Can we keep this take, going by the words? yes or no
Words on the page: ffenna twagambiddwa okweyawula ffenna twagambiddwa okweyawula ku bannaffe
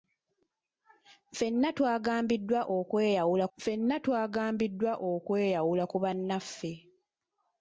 yes